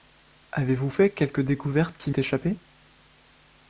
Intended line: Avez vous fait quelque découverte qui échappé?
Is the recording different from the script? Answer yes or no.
no